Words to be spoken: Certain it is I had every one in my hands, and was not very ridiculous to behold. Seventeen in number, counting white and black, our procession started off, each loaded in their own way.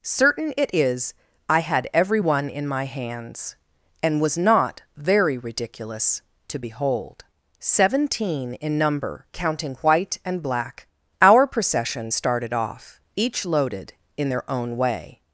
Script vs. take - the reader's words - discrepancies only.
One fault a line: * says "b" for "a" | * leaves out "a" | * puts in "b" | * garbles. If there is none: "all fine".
all fine